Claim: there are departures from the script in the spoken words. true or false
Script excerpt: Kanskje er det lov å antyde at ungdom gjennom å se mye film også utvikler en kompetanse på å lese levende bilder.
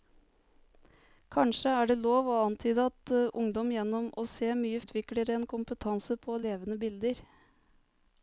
true